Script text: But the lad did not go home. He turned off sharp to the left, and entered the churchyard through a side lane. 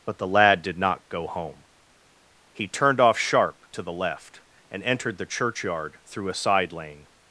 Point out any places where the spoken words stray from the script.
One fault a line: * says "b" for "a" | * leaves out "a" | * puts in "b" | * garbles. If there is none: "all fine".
all fine